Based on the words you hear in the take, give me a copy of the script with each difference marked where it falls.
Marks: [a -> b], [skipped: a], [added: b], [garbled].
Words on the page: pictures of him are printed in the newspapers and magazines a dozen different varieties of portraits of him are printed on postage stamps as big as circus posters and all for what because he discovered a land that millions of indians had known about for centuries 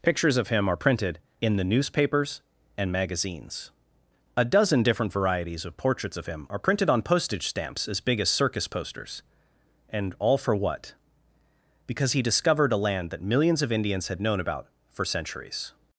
pictures of him are printed in the newspapers and magazines a dozen different varieties of portraits of him are printed on postage stamps as big as circus posters and all for what because he discovered a land that millions of indians had known about for centuries